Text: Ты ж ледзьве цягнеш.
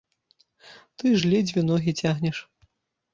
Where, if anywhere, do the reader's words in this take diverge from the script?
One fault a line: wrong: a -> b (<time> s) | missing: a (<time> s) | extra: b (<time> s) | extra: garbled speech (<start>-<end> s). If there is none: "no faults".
extra: ногі (1.7 s)